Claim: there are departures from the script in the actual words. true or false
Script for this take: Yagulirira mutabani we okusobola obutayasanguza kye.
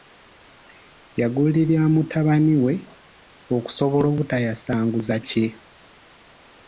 false